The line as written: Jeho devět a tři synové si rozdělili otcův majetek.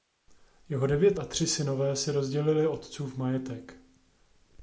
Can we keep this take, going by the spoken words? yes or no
yes